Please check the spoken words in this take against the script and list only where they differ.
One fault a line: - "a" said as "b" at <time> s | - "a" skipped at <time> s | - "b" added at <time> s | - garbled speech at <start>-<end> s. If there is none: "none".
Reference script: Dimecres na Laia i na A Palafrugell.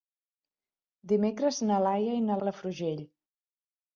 none